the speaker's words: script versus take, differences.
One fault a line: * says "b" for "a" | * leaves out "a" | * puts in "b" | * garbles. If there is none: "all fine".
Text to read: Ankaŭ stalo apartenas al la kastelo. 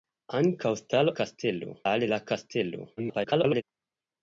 * says "kastelo" for "apartenas"
* garbles